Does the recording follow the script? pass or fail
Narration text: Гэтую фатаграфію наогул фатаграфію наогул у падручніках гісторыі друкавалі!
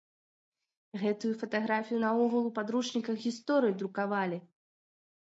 fail